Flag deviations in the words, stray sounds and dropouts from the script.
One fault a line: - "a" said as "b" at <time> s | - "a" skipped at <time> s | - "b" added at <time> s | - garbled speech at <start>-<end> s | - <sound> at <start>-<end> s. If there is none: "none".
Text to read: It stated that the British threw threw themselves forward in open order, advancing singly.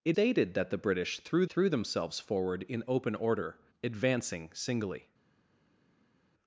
none